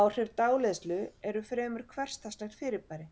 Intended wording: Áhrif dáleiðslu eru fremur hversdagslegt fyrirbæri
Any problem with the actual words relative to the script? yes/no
no